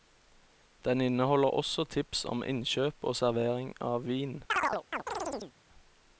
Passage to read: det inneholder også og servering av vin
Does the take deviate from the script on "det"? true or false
true